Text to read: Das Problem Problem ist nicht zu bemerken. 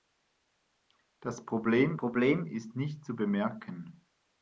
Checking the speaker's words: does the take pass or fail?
pass